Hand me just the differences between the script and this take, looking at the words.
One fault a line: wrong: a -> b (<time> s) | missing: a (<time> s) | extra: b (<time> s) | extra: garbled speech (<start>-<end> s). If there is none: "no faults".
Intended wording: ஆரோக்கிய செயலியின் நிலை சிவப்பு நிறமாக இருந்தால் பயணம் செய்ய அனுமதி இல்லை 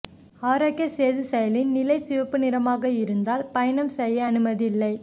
extra: சேது (0.9 s)